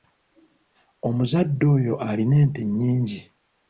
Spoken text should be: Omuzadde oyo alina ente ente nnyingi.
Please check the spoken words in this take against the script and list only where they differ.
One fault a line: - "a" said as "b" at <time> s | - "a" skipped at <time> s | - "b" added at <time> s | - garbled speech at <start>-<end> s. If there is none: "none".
- "ente" skipped at 2.6 s